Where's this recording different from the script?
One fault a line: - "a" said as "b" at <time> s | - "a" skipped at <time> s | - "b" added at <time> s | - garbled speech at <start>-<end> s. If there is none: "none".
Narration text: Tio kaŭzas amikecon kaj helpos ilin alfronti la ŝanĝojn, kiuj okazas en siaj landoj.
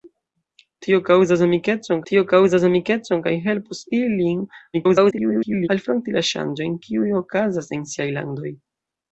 - "tio kaŭzas amikecon" added at 2.1 s
- garbled speech at 4.7-5.7 s